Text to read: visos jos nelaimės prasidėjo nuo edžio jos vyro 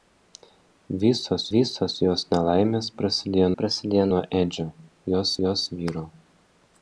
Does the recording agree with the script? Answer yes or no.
no